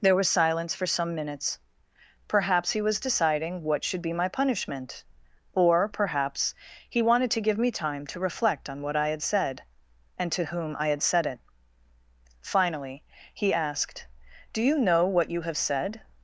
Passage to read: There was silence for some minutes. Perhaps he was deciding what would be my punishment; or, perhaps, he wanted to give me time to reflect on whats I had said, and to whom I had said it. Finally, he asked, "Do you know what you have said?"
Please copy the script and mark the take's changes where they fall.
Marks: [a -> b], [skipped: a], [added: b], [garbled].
There was silence for some minutes. Perhaps he was deciding what [would -> should] be my punishment; or, perhaps, he wanted to give me time to reflect on [whats -> what] I had said, and to whom I had said it. Finally, he asked, "Do you know what you have said?"